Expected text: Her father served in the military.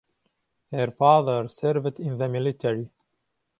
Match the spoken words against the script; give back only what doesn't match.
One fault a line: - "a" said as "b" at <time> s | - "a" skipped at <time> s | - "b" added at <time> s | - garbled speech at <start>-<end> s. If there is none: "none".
none